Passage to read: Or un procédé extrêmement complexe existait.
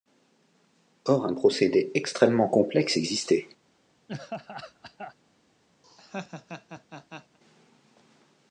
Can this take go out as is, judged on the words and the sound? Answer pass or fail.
fail